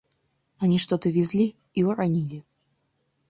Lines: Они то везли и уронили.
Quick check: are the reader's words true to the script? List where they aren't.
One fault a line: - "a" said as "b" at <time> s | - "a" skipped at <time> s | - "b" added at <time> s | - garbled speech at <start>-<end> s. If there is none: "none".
- "что" added at 0.8 s